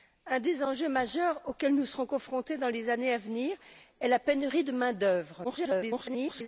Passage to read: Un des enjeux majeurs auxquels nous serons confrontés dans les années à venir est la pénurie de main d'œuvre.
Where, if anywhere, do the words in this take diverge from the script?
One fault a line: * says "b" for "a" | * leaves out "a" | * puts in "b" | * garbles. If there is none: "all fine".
* garbles